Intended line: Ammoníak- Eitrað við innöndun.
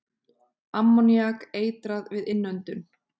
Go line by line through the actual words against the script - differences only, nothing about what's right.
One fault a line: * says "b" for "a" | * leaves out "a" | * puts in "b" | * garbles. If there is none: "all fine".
all fine